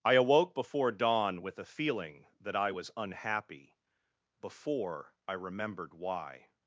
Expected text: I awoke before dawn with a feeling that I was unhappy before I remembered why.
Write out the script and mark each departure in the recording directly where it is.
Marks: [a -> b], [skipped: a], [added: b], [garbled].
I awoke before dawn with a feeling that I was unhappy before I remembered why.